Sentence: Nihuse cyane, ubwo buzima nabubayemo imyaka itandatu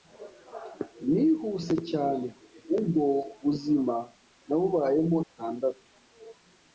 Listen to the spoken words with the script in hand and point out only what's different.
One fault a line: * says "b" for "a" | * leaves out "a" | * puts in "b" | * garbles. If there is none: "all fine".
* leaves out "imyaka"